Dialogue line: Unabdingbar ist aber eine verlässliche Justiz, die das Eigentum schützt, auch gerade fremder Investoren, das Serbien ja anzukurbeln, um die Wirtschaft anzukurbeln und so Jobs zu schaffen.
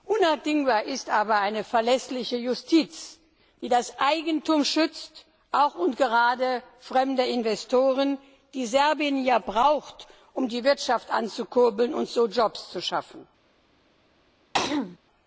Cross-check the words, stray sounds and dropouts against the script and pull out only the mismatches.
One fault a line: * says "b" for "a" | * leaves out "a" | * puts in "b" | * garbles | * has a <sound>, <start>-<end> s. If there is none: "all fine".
* puts in "und"
* says "die" for "das"
* says "braucht" for "anzukurbeln"
* has a throat clearing, 14.5-15.0 s